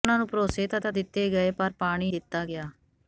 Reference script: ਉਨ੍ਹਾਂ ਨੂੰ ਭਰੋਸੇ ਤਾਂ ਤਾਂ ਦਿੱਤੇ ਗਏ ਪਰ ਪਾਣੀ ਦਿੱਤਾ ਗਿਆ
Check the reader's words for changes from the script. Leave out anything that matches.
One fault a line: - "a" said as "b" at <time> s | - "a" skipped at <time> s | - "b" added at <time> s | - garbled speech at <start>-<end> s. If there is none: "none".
none